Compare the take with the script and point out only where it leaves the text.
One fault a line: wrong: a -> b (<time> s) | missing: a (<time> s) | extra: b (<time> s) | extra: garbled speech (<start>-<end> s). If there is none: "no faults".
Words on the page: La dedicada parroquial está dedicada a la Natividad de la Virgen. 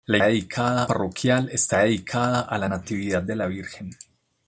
no faults